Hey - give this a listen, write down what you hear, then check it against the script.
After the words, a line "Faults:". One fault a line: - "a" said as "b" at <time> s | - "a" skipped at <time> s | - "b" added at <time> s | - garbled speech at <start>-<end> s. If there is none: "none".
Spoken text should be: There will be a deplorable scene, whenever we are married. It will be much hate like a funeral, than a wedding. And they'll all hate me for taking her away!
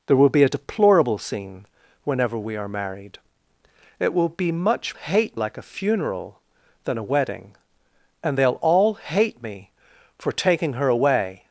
There will be a deplorable scene, whenever we are married. It will be much hate like a funeral, than a wedding. And they'll all hate me for taking her away!
Faults:
none